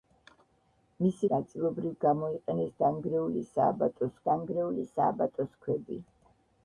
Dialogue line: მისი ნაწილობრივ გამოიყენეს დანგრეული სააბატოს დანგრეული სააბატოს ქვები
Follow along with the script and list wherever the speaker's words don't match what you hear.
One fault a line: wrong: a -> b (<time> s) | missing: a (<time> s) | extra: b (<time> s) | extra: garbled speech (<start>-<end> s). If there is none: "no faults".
no faults